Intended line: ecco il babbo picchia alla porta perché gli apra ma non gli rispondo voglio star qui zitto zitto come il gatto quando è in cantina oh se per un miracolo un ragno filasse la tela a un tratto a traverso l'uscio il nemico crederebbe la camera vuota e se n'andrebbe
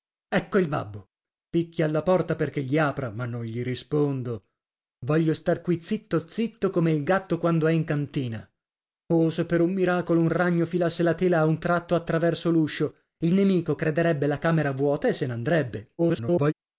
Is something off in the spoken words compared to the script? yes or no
yes